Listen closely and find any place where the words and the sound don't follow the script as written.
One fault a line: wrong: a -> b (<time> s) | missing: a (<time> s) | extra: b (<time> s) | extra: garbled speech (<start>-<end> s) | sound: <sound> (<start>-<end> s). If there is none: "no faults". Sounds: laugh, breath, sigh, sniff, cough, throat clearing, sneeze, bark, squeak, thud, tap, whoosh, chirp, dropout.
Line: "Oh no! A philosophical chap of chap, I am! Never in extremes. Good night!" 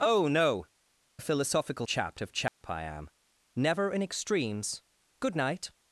sound: dropout (2.5-2.6 s)